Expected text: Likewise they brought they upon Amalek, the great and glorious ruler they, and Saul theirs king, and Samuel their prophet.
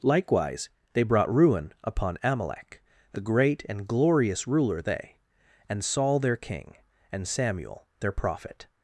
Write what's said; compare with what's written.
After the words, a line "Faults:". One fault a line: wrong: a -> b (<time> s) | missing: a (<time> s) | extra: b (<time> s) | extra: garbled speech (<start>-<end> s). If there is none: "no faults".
Likewise they brought ruin upon Amalek, the great and glorious ruler they, and Saul their king, and Samuel their prophet.
Faults:
wrong: they -> ruin (1.3 s)
wrong: theirs -> their (6.2 s)